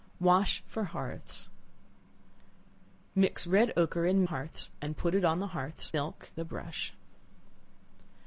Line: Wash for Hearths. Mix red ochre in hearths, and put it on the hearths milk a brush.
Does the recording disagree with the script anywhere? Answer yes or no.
no